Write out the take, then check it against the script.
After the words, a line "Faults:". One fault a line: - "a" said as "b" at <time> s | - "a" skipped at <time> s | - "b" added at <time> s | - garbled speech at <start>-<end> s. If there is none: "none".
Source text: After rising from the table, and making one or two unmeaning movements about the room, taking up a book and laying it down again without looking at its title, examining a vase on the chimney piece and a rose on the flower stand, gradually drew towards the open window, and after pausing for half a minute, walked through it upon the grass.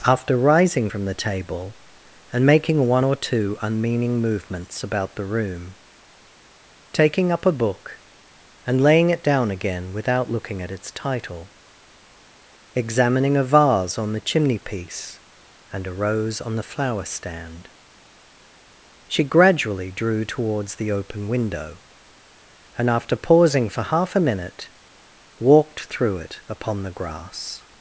After rising from the table, and making one or two unmeaning movements about the room, taking up a book and laying it down again without looking at its title, examining a vase on the chimney piece and a rose on the flower stand, she gradually drew towards the open window, and after pausing for half a minute, walked through it upon the grass.
Faults:
- "she" added at 19.1 s